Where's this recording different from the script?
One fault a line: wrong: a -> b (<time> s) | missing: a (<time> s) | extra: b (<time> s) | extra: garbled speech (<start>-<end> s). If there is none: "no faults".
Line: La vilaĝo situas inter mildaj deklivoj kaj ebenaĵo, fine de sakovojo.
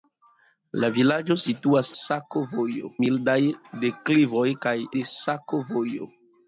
wrong: inter -> sakovojo (2.0 s)
missing: ebenaĵo fine (4.7 s)